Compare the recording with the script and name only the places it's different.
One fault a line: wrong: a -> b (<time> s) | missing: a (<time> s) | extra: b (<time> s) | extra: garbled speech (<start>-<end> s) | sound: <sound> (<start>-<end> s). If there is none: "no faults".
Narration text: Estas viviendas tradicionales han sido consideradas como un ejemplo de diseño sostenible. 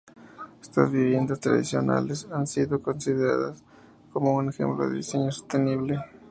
no faults